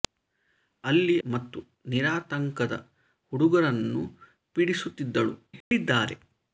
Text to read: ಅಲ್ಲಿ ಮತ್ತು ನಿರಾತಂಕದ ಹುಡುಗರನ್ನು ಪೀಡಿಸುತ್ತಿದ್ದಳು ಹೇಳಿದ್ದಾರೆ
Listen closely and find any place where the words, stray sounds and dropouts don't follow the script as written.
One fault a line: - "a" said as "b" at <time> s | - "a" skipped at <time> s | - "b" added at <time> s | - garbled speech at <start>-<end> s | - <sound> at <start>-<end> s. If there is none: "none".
- dropout at 5.6-5.7 s